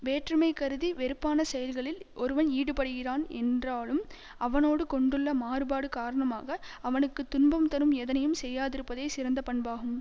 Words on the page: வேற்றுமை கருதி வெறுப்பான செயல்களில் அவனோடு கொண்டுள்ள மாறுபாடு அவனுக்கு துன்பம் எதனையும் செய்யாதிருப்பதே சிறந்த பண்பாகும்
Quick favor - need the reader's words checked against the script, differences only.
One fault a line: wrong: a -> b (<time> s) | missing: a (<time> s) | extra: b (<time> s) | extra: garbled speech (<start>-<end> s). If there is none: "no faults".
extra: ஒருவன் ஈடுபடுகிறான் என்றாலும் (2.1 s)
extra: காரணமாக (5.9 s)
extra: தரும் (7.7 s)